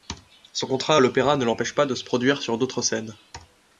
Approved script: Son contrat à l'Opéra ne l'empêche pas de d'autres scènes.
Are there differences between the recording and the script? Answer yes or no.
yes